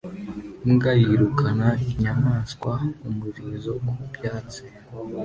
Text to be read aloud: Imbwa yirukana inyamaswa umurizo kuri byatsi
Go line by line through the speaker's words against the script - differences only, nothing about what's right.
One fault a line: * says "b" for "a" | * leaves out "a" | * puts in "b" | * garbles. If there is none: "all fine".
* says "ku" for "kuri"